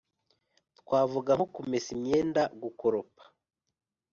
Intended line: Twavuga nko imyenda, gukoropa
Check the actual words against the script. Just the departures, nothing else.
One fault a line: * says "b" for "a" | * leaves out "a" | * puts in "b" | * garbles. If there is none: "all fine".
* puts in "kumesa"